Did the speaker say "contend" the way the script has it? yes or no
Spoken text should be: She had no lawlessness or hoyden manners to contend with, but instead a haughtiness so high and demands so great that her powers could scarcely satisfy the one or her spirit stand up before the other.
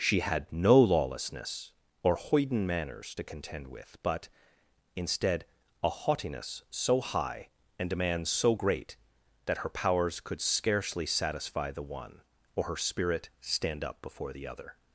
yes